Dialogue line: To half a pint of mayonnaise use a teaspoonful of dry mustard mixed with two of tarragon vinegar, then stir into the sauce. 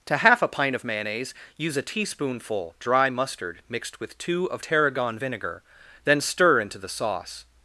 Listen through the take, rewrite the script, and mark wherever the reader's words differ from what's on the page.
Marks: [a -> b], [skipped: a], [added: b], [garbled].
To half a pint of mayonnaise use a teaspoonful [skipped: of] dry mustard mixed with two of tarragon vinegar, then stir into the sauce.